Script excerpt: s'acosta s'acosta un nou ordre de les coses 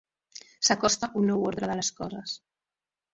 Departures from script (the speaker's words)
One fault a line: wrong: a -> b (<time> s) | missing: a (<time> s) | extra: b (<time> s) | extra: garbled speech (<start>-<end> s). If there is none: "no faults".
missing: s'acosta (1.1 s)